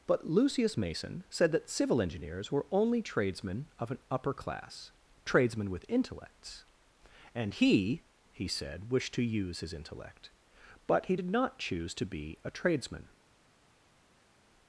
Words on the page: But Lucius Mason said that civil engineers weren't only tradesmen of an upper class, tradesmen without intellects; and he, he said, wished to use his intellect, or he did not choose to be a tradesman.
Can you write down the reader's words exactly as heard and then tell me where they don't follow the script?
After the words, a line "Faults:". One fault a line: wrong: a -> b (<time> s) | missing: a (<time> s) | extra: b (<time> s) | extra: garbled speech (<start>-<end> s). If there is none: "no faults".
But Lucius Mason said that civil engineers were only tradesmen of an upper class, tradesmen with intellects; and he, he said, wished to use his intellect, but he did not choose to be a tradesman.
Faults:
wrong: weren't -> were (2.5 s)
wrong: without -> with (5.7 s)
wrong: or -> but (10.9 s)